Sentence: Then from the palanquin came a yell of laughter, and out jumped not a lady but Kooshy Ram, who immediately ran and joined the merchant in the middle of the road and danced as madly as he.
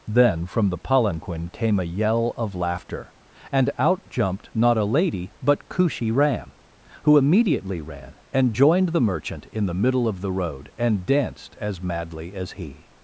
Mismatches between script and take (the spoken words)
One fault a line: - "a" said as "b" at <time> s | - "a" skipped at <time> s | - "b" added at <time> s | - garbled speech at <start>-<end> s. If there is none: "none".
none